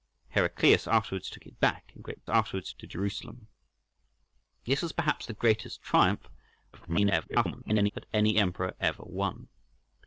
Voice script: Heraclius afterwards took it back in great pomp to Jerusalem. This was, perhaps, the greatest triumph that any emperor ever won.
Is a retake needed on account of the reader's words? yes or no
yes